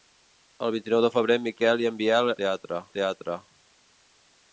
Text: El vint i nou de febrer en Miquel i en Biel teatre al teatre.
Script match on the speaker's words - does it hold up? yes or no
yes